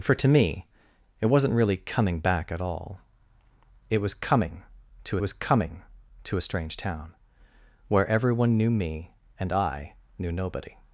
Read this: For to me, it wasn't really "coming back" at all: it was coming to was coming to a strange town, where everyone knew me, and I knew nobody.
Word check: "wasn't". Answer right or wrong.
right